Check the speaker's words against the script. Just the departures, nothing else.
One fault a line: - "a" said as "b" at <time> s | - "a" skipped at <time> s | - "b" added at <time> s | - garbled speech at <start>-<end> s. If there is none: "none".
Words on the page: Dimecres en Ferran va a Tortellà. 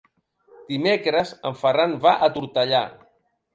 none